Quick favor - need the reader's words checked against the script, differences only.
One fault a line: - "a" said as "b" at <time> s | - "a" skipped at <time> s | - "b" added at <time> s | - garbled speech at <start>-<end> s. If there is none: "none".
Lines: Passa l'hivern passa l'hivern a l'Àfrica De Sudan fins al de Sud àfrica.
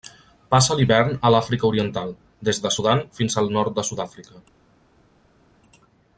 - "passa l'hivern a l'Àfrica" said as "a l'Àfrica Oriental des" at 1.3 s
- "nord" added at 3.6 s